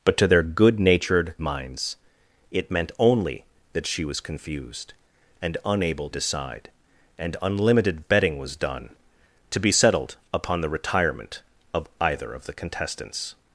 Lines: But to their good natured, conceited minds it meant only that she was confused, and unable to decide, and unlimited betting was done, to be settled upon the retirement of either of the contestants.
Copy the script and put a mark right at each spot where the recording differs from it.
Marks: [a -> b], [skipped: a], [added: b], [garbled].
But to their good natured, [skipped: conceited] minds it meant only that she was confused, and unable [skipped: to] decide, and unlimited betting was done, to be settled upon the retirement of either of the contestants.